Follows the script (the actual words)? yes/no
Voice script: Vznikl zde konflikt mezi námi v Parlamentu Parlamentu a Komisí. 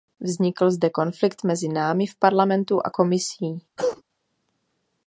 no